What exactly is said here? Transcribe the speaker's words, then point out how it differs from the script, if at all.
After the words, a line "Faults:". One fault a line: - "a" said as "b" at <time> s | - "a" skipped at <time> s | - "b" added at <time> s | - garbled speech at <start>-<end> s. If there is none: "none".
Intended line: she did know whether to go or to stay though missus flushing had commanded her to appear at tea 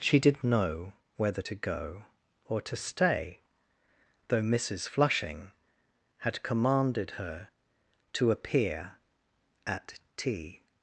she did know whether to go or to stay though missus flushing had commanded her to appear at tea
Faults:
none